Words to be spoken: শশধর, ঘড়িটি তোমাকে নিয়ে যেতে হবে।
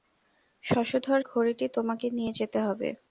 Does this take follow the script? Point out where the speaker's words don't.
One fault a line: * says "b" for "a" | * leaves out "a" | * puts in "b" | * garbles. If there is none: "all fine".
all fine